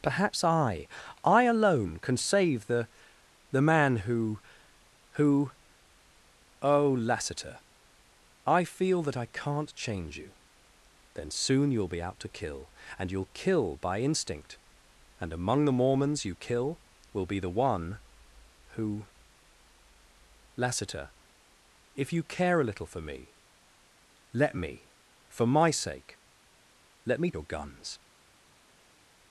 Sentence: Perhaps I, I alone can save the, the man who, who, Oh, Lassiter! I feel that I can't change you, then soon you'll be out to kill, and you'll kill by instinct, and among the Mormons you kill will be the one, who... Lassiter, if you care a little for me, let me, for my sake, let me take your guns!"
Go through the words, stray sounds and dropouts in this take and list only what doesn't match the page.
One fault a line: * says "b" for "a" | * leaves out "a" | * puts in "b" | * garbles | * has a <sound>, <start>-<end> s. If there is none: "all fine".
* leaves out "take"